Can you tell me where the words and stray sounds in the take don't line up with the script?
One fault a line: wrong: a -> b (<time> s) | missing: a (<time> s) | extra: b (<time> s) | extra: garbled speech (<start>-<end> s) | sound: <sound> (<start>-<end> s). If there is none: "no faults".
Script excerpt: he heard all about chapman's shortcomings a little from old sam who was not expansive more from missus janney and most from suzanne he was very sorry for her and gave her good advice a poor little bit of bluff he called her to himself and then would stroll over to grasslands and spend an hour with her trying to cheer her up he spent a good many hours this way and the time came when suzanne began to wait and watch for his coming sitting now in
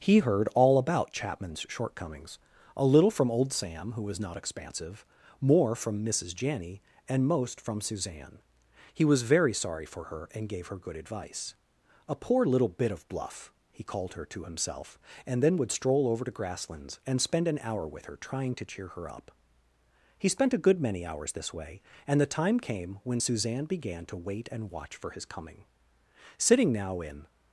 no faults